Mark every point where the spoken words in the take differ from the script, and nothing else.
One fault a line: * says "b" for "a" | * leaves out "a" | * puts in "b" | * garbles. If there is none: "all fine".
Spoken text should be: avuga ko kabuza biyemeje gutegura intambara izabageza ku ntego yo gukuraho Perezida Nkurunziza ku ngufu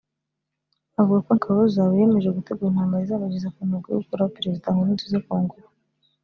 all fine